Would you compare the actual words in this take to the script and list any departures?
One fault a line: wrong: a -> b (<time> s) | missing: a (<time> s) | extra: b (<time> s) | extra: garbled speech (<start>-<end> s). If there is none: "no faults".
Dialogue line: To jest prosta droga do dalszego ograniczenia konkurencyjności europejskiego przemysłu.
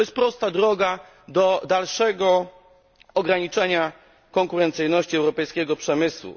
no faults